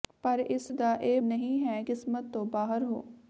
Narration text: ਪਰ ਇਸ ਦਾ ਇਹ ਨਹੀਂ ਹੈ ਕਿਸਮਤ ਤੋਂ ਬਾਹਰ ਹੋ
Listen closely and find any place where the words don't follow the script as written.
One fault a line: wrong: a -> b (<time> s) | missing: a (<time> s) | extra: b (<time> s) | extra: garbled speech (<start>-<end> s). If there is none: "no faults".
no faults